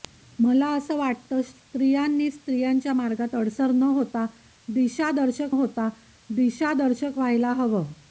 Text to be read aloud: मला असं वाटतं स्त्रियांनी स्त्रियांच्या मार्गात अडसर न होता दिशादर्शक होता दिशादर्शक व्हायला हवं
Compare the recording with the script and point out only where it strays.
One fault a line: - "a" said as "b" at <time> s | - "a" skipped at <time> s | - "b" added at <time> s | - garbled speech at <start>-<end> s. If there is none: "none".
none